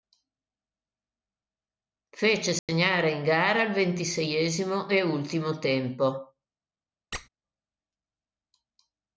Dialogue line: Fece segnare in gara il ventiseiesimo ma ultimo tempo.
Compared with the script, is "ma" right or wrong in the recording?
wrong